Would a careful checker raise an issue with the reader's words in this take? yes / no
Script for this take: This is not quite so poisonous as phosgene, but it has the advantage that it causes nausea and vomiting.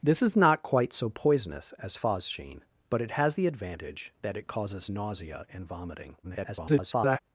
yes